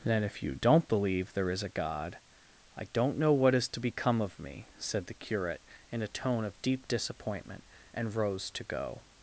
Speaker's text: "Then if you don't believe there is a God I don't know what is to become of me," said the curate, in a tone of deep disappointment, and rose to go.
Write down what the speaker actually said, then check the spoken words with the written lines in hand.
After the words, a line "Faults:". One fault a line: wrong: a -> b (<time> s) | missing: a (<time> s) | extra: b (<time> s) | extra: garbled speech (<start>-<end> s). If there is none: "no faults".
"Then if you don't believe there is a God I don't know what is to become of me," said the curate, in a tone of deep disappointment, and rose to go.
Faults:
no faults